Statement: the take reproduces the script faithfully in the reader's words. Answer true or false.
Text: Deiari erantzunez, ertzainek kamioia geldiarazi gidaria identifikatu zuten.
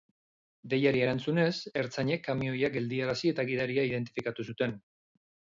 false